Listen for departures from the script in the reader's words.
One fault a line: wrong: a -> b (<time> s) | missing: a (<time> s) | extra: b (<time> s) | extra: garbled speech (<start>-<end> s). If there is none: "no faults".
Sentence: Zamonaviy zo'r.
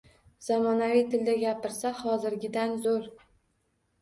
extra: tilda gapirsa hozirgidan (1.1 s)